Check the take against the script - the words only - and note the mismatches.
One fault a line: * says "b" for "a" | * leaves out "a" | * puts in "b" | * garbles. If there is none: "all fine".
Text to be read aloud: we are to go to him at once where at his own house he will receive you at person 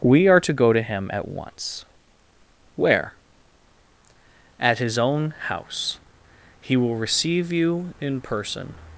* says "in" for "at"